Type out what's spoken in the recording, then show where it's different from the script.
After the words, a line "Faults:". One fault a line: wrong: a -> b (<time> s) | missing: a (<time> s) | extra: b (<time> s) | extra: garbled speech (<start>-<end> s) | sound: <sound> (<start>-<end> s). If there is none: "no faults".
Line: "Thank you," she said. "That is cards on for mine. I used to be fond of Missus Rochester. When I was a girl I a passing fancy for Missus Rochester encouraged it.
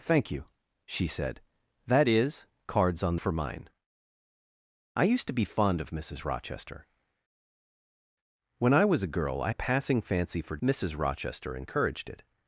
"Thank you," she said. "That is cards on for mine. I used to be fond of Missus Rochester. When I was a girl I a passing fancy for Missus Rochester encouraged it.
Faults:
no faults